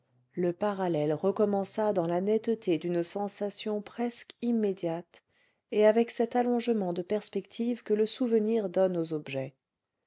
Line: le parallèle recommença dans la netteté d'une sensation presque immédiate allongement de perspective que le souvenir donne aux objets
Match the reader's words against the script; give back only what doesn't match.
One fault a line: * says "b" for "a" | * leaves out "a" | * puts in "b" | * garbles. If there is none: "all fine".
* puts in "et avec cet"